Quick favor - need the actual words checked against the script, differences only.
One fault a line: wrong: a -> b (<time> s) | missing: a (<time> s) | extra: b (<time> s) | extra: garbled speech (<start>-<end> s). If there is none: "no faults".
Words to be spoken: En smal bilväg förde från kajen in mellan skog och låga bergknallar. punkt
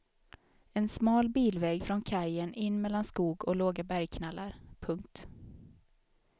missing: förde (1.8 s)